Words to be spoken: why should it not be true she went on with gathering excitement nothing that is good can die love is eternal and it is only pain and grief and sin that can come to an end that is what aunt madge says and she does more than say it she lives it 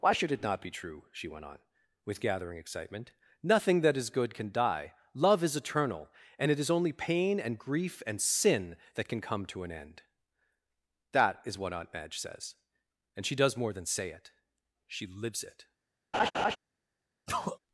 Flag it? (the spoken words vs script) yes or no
no